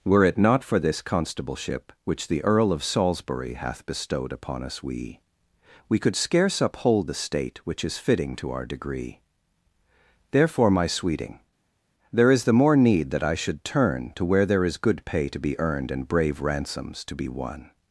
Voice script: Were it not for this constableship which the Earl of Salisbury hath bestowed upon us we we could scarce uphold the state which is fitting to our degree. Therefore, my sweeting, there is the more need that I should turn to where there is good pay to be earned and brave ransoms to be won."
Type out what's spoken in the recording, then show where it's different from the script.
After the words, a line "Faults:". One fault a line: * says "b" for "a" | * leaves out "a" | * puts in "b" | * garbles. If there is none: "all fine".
Were it not for this constableship which the Earl of Salisbury hath bestowed upon us we we could scarce uphold the state which is fitting to our degree. Therefore, my sweeting, there is the more need that I should turn to where there is good pay to be earned and brave ransoms to be won."
Faults:
all fine